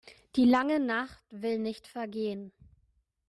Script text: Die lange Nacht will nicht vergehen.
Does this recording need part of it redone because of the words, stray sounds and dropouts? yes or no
no